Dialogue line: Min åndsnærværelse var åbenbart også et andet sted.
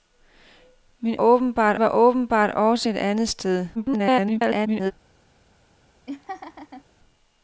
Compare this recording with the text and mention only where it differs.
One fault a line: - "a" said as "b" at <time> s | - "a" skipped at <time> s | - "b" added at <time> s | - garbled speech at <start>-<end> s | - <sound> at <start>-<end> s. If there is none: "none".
- "åndsnærværelse" said as "åbenbart" at 1.1 s
- garbled speech at 3.7-4.9 s
- laugh at 6.1-6.8 s